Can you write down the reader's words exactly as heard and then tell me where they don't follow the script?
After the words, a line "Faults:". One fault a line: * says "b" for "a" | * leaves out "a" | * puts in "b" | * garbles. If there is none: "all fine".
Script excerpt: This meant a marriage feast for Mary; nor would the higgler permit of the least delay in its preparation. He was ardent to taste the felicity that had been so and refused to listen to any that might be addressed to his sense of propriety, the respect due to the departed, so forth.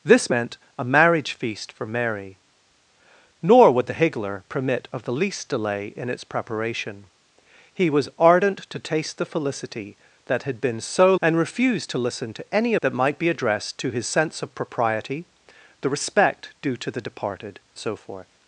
This meant a marriage feast for Mary; nor would the higgler permit of the least delay in its preparation. He was ardent to taste the felicity that had been so and refused to listen to any that might be addressed to his sense of propriety, the respect due to the departed, so forth.
Faults:
all fine